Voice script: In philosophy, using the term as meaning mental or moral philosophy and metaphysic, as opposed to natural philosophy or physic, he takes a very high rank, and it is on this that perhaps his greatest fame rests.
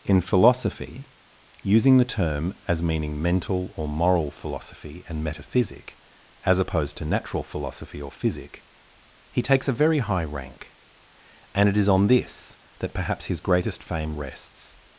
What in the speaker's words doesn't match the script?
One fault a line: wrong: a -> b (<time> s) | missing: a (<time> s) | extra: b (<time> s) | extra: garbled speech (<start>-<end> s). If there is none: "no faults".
no faults